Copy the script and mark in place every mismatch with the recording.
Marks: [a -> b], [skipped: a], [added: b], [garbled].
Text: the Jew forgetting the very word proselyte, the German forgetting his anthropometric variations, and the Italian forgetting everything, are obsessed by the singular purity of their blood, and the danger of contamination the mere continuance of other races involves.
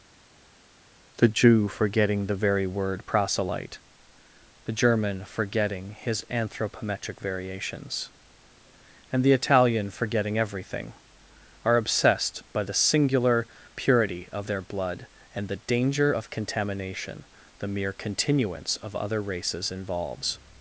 the Jew forgetting the very word proselyte, the German forgetting his anthropometric variations, and the Italian forgetting everything, are obsessed by the singular purity of their blood, and the danger of contamination the mere continuance of other races involves.